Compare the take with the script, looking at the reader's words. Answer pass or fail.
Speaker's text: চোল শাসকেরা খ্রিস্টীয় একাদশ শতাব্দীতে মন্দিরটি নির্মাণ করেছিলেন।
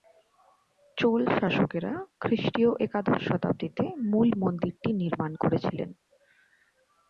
fail